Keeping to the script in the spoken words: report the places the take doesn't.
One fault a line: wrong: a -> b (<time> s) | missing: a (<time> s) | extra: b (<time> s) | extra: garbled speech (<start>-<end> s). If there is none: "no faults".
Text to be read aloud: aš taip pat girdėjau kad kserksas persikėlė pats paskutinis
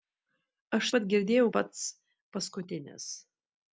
missing: taip (0.9 s)
missing: kad kserksas persikėlė (1.5 s)